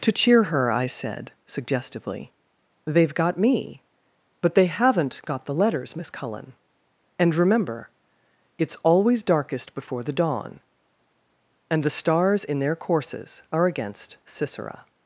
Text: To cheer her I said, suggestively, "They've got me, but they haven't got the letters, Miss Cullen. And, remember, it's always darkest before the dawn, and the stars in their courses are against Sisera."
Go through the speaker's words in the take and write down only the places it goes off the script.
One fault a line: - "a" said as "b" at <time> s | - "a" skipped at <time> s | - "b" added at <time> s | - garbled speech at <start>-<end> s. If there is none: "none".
none